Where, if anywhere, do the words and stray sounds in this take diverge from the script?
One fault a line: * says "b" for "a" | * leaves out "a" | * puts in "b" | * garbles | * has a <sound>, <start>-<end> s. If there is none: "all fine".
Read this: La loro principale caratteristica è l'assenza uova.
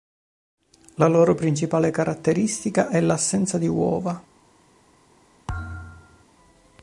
* puts in "di"
* has a thud, 5.5-6.2 s